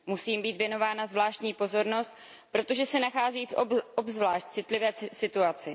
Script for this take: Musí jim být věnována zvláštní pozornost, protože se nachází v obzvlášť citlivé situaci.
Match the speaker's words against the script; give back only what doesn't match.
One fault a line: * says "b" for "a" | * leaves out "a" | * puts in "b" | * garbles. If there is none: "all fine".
all fine